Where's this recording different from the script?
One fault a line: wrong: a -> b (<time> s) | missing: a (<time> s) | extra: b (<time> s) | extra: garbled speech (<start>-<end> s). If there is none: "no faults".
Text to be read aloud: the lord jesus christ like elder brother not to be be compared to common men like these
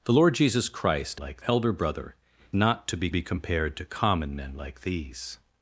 no faults